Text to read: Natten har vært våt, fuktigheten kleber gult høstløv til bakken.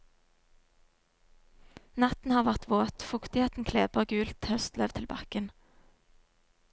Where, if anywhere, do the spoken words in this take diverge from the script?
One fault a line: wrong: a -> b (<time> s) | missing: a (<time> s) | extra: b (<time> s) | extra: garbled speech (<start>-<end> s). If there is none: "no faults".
no faults